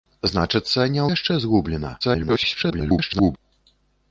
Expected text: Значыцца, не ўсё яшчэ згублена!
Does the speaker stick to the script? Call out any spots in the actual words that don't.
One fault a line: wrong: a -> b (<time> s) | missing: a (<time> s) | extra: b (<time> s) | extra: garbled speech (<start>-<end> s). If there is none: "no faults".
missing: ўсё (1.0 s)
extra: garbled speech (2.0-3.4 s)